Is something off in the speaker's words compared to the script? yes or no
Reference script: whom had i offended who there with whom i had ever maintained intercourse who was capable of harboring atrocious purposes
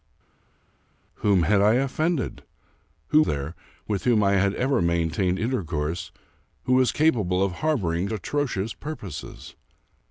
no